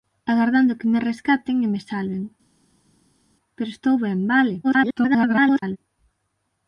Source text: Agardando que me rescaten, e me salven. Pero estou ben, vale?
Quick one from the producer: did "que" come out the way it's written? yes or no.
yes